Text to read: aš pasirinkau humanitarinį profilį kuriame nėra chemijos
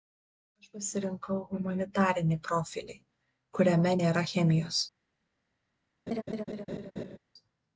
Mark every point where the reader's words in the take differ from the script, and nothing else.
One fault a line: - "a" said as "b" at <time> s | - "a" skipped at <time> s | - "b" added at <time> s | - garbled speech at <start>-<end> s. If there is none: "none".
none